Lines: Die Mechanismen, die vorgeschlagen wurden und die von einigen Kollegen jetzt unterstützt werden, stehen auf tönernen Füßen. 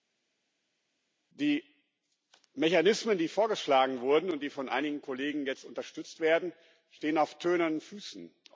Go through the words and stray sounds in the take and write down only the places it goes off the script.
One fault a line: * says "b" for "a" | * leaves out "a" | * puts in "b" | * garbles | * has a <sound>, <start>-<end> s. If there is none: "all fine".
all fine